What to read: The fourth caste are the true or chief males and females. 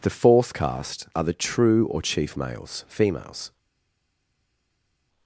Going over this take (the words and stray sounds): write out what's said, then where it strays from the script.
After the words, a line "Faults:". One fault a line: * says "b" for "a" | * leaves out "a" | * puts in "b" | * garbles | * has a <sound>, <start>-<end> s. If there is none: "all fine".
The fourth caste are the true or chief males females.
Faults:
* leaves out "and"